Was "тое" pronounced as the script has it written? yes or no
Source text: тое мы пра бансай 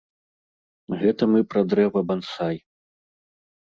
no